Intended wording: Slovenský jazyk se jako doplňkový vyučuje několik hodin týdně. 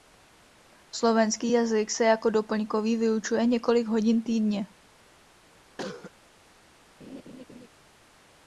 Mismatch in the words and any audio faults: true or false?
true